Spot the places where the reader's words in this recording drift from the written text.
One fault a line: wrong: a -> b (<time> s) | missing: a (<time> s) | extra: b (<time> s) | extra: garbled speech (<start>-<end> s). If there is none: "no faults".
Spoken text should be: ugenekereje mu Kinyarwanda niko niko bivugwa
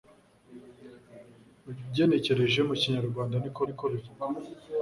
no faults